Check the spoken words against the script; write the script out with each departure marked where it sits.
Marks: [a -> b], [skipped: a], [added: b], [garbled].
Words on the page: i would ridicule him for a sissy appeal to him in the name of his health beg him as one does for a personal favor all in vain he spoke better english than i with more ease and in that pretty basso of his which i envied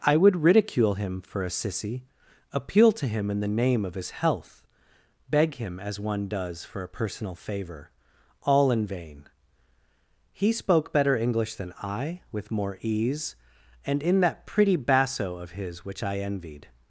i would ridicule him for a sissy appeal to him in the name of his health beg him as one does for a personal favor all in vain he spoke better english than i with more ease and in that pretty basso of his which i envied